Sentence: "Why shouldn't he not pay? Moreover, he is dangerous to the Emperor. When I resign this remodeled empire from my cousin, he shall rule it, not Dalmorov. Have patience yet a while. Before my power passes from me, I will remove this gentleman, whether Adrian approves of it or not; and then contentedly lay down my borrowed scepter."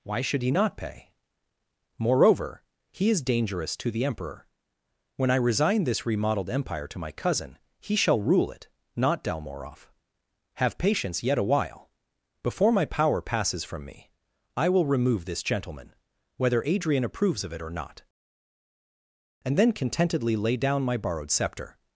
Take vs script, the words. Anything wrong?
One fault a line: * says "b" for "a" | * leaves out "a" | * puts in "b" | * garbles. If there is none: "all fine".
* says "should" for "shouldn't"
* says "to" for "from"